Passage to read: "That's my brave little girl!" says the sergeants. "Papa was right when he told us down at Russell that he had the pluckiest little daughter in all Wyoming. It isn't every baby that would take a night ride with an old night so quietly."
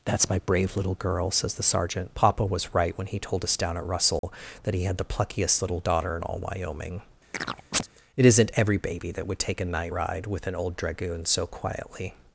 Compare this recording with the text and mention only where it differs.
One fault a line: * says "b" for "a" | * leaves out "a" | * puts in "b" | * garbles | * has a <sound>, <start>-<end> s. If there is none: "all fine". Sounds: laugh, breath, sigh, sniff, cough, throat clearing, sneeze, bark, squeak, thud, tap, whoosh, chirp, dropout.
* says "sergeant" for "sergeants"
* has a dropout, 4.2-4.2 s
* has a chirp, 7.3-7.9 s
* says "dragoon" for "night"